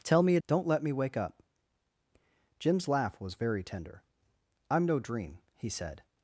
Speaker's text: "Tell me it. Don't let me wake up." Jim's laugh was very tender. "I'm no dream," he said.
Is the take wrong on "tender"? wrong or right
right